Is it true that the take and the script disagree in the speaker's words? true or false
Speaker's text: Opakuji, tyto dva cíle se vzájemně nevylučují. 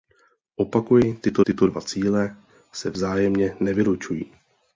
true